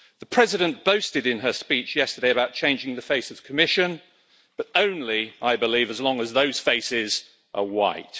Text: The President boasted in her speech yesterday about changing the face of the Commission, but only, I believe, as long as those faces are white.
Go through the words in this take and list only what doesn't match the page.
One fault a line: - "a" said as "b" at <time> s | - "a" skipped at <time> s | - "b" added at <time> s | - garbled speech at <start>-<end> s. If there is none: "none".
none